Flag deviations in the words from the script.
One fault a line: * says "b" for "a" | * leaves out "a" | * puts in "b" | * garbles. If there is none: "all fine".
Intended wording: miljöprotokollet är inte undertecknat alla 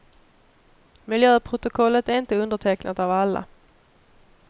* puts in "av"